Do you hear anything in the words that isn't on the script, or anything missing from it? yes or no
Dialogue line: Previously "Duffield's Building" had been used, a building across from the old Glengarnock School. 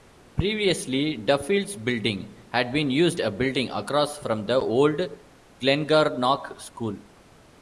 no